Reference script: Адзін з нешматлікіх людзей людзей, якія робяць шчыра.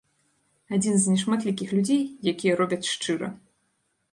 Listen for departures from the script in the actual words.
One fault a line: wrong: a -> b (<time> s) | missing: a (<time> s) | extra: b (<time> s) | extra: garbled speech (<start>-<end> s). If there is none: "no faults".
missing: людзей (2.0 s)